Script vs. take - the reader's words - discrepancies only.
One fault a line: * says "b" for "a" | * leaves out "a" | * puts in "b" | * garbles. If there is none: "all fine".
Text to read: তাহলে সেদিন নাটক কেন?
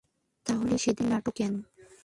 all fine